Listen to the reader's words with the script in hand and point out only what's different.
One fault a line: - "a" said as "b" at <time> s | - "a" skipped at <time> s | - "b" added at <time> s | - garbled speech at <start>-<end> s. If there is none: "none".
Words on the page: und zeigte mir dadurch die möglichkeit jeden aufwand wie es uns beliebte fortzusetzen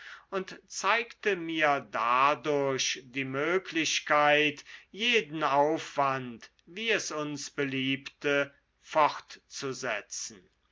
none